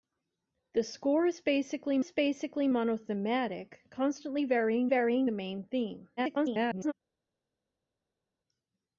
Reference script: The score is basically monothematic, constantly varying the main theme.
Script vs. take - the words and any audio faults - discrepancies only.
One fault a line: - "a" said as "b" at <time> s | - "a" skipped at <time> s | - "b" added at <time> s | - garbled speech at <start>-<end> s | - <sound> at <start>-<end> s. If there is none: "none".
- "is basically" added at 2.0 s
- "varying" added at 4.9 s
- garbled speech at 6.2-6.9 s